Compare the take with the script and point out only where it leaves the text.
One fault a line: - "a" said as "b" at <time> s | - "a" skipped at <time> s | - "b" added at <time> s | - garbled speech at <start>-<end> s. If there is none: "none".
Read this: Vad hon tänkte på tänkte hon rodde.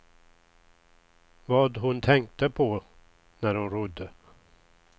- "tänkte" said as "när" at 3.4 s